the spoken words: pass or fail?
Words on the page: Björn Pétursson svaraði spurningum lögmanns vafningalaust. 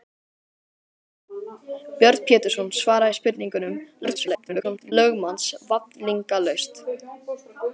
fail